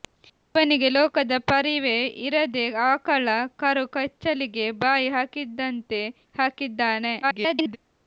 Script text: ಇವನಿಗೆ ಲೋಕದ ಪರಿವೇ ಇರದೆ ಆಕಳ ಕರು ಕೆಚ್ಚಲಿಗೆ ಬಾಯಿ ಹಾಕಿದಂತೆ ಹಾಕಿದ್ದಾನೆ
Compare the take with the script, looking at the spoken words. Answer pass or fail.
fail